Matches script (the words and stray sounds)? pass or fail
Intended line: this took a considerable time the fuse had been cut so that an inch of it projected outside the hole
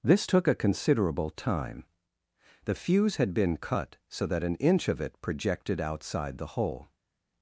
pass